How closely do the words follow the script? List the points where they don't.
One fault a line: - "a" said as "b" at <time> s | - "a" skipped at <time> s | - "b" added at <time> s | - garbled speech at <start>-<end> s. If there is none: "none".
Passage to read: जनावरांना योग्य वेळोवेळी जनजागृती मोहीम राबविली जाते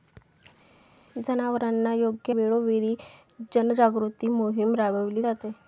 none